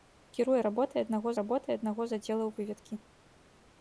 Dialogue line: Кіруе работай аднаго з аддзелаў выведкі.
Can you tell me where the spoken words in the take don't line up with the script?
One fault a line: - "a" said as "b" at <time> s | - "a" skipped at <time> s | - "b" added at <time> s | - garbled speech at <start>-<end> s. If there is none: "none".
- "работай аднаго" added at 1.4 s